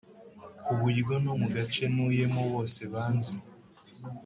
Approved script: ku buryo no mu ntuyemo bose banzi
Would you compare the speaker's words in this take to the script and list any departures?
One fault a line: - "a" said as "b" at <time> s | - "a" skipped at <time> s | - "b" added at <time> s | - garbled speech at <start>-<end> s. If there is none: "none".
- "gace" added at 1.6 s